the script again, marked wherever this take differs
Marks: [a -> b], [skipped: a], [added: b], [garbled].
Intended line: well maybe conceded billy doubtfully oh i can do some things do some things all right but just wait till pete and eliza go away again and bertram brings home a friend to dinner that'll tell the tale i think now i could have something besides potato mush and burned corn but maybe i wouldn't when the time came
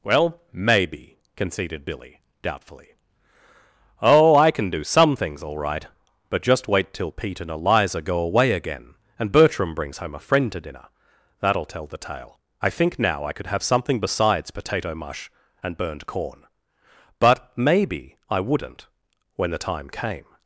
well maybe conceded billy doubtfully oh i can do some things [skipped: do some things] all right but just wait till pete and eliza go away again and bertram brings home a friend to dinner that'll tell the tale i think now i could have something besides potato mush and burned corn but maybe i wouldn't when the time came